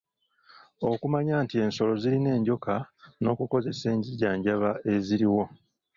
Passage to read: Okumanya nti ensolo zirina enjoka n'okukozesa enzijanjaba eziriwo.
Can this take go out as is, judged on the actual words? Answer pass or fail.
pass